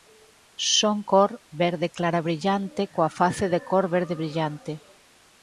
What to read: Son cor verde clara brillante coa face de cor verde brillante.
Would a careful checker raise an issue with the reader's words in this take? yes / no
no